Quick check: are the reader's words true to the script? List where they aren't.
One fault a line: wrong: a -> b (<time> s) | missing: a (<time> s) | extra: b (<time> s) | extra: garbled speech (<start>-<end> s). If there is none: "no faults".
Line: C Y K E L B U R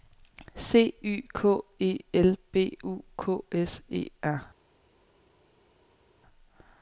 extra: K S E (3.2 s)